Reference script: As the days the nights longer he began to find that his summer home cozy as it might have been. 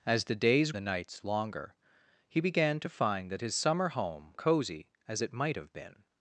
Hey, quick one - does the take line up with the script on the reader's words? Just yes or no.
yes